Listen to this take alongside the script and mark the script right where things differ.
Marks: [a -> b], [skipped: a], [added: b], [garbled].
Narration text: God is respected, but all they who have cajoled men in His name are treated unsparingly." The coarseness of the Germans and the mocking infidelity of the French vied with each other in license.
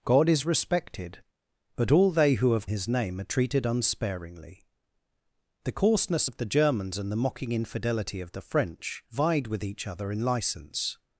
God is respected, but all they who have [skipped: cajoled men in] His name are treated unsparingly." The coarseness of the Germans and the mocking infidelity of the French vied with each other in license.